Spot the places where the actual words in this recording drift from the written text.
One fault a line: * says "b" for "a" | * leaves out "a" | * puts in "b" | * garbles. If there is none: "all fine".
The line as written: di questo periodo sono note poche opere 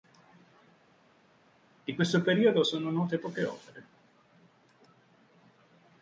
all fine